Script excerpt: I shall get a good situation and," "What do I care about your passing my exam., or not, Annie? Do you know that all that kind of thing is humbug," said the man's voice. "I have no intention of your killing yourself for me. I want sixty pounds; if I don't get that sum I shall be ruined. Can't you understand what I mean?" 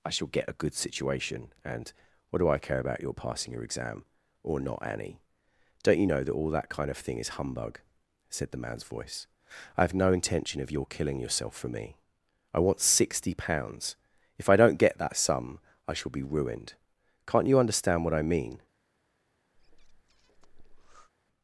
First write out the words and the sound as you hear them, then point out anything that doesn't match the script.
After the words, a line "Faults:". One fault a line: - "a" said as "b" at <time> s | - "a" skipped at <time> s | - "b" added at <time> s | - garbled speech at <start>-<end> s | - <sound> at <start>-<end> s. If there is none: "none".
I shall get a good situation and," "What do I care about your passing your exam., or not, Annie? Don't you know that all that kind of thing is humbug," said the man's voice. "I have no intention of your killing yourself for me. I want sixty pounds; if I don't get that sum I shall be ruined. Can't you understand what I mean?"
Faults:
- "my" said as "your" at 3.5 s
- "Do" said as "Don't" at 5.8 s
- breath at 19.6-21.1 s